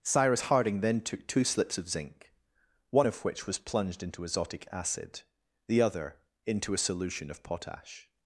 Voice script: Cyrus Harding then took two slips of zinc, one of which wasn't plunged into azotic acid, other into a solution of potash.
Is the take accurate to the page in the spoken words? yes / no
no